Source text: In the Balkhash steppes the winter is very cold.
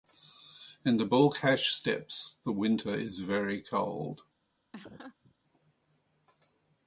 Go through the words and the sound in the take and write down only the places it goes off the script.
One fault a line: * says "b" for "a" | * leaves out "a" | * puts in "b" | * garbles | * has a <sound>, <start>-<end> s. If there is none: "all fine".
* has a laugh, 4.7-5.3 s